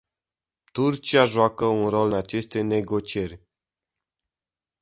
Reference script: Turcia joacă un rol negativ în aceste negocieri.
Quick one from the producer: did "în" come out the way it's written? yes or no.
no